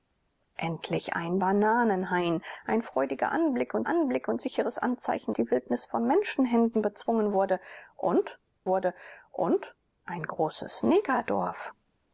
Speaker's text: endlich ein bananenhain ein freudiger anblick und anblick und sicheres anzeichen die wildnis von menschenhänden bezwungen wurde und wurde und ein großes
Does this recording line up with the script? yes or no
yes